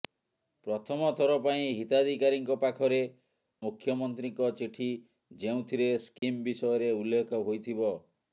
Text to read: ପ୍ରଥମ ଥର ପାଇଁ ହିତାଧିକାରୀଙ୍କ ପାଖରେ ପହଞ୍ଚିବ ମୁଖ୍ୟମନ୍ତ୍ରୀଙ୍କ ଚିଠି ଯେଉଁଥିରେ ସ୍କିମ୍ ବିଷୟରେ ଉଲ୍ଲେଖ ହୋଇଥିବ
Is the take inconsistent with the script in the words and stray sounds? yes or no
yes